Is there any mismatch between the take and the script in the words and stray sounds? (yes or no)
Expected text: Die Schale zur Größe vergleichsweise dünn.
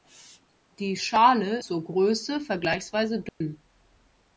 yes